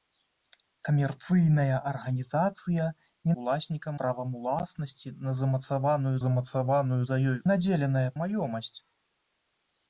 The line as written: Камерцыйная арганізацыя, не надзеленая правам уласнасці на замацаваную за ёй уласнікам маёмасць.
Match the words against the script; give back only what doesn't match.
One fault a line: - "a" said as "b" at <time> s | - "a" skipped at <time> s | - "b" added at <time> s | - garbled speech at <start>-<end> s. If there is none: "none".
- "надзеленая" said as "уласнікам" at 3.4 s
- "замацаваную" added at 6.2 s
- "уласнікам" said as "надзеленая" at 7.5 s